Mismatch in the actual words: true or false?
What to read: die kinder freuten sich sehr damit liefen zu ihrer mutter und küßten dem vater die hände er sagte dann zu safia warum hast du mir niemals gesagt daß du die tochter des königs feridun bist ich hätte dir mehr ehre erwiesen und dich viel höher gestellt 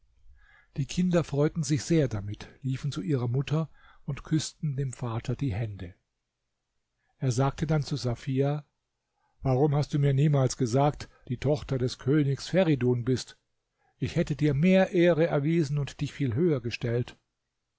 true